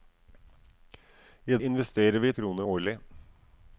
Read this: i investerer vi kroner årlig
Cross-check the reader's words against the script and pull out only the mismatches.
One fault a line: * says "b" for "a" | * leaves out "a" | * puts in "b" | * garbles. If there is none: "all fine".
all fine